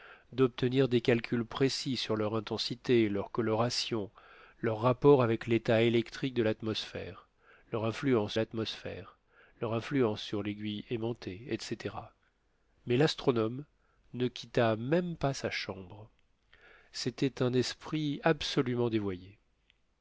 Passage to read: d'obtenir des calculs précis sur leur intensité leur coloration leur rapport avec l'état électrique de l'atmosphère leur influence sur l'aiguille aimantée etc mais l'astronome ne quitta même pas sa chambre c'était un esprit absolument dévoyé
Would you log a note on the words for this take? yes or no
yes